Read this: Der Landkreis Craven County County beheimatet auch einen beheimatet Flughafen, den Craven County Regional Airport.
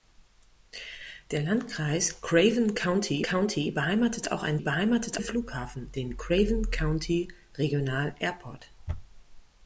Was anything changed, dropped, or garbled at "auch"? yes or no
no